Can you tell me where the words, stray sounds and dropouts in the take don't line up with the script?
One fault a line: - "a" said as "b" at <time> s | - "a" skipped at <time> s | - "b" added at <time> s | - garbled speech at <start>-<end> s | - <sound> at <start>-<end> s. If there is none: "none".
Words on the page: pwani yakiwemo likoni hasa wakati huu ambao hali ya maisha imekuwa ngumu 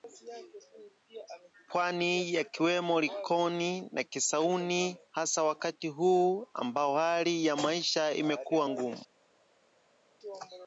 - "na kisauni" added at 3.9 s